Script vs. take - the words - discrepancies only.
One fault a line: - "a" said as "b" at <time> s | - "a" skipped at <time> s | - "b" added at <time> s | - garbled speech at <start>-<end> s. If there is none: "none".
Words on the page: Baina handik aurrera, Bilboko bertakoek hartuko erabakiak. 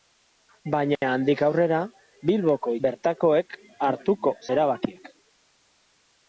none